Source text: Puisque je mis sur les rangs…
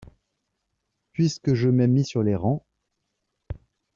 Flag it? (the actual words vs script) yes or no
yes